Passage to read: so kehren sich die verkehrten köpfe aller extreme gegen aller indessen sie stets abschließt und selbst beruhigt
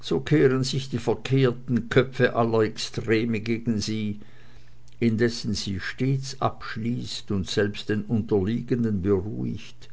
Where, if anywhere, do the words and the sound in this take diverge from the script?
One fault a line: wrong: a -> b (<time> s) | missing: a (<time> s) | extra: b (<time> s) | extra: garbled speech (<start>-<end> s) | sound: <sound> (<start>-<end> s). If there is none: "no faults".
wrong: aller -> sie (3.8 s)
extra: den unterliegenden (7.9 s)